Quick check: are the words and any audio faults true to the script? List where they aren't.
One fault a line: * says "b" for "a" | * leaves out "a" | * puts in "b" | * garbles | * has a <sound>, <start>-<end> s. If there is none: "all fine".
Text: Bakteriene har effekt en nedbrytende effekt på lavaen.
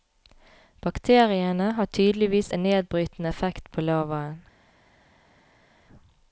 * says "tydeligvis" for "effekt"